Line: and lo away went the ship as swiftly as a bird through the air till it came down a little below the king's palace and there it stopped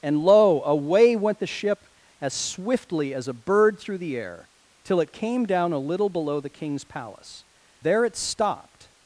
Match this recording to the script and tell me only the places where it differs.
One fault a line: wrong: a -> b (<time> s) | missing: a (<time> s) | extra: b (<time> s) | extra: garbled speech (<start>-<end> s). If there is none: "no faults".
missing: and (7.5 s)